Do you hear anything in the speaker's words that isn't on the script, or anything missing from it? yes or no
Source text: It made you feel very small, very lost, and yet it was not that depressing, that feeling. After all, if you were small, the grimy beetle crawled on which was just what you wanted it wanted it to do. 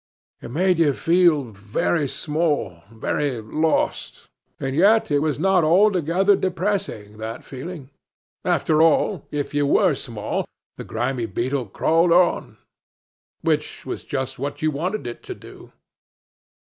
yes